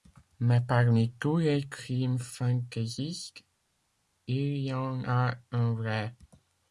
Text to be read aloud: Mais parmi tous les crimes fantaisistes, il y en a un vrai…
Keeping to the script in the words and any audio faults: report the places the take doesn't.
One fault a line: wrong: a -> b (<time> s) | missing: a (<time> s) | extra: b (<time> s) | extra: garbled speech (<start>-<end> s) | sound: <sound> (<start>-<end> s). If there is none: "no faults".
no faults